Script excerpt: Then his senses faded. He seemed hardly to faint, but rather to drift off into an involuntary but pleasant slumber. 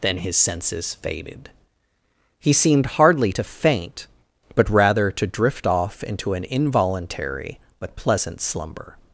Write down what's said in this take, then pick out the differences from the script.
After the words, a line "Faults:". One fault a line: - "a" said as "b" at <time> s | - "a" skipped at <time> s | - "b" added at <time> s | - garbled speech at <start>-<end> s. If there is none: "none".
Then his senses faded. He seemed hardly to faint, but rather to drift off into an involuntary but pleasant slumber.
Faults:
none